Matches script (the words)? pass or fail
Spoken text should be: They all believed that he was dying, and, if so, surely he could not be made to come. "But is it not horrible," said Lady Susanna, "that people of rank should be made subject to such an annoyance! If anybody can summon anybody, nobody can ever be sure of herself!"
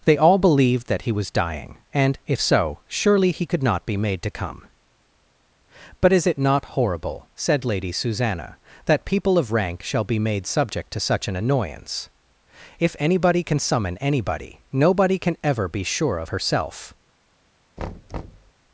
fail